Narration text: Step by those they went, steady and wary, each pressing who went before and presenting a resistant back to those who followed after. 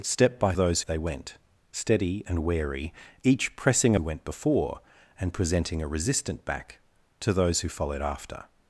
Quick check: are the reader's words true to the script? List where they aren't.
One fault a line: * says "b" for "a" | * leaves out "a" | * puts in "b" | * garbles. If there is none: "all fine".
all fine